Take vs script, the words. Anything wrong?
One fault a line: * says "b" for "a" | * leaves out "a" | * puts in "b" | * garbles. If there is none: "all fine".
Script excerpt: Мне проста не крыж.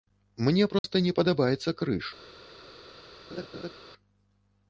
* puts in "падабаецца"